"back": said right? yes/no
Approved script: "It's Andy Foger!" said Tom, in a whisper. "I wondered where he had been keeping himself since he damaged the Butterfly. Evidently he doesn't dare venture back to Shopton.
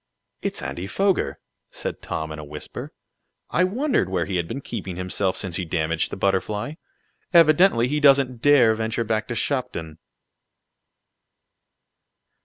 yes